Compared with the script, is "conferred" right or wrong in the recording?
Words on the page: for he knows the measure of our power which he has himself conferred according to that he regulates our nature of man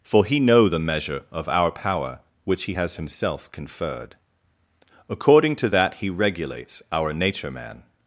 right